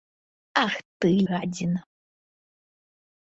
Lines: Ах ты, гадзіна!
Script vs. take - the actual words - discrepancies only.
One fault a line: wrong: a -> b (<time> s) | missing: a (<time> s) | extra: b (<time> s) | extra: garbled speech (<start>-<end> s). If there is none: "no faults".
no faults